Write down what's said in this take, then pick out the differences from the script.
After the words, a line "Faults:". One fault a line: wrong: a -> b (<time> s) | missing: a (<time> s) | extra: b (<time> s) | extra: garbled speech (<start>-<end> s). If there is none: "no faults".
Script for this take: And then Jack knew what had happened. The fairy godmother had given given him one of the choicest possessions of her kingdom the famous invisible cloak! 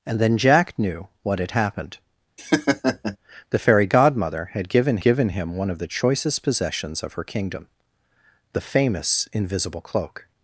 And then Jack knew what had happened. The fairy godmother had given given him one of the choicest possessions of her kingdom the famous invisible cloak!
Faults:
no faults